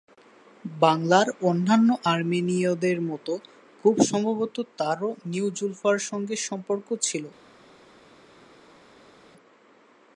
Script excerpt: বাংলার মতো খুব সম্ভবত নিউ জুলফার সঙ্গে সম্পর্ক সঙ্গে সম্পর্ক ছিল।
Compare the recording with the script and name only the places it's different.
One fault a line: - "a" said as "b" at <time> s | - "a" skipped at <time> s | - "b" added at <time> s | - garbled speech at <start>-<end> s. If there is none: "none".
- "অন্যান্য আর্মেনীয়দের" added at 1.4 s
- "তারও" added at 4.8 s
- "সঙ্গে সম্পর্ক" skipped at 6.9 s